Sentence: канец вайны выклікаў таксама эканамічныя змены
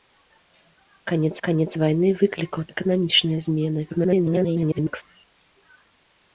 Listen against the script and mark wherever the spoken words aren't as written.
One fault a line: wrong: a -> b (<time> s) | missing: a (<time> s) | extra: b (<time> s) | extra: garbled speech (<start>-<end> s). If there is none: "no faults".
extra: канец (1.5 s)
missing: таксама (2.6 s)
extra: garbled speech (3.9-5.0 s)